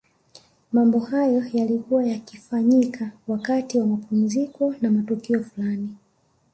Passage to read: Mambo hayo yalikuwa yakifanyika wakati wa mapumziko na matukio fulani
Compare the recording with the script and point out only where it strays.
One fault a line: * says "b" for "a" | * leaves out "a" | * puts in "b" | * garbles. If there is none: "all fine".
all fine